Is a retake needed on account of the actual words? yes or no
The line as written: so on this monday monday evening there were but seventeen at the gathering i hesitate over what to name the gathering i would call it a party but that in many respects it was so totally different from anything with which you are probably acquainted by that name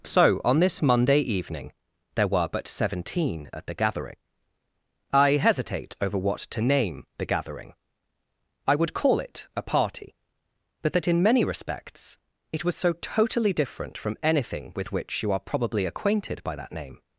yes